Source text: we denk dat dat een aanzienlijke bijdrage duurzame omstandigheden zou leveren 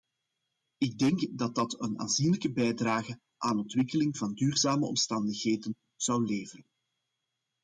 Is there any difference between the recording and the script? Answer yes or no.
yes